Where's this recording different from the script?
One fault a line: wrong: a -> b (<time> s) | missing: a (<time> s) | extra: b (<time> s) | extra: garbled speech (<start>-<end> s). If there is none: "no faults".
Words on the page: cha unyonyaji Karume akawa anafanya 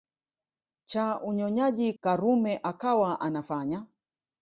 no faults